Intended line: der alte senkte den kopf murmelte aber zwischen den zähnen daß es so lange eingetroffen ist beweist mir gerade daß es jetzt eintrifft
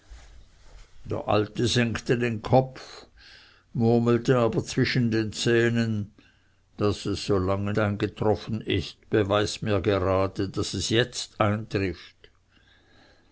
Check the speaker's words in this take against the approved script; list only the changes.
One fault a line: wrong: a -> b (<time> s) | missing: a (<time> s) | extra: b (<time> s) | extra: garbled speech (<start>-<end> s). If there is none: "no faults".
no faults